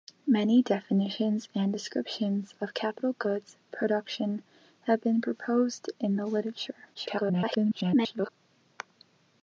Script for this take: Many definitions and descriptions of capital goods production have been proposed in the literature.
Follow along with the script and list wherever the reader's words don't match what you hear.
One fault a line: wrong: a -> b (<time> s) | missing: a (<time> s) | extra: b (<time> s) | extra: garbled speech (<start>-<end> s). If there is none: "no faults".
extra: garbled speech (6.9-8.3 s)